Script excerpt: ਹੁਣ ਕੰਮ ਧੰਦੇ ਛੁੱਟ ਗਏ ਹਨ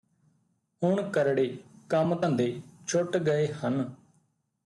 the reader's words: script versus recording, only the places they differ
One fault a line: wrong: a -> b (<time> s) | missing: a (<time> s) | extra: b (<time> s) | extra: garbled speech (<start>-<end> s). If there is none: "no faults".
extra: ਕਰੜੇ (1.1 s)